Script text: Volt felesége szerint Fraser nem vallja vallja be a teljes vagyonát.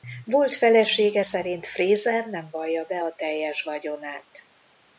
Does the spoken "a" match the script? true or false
true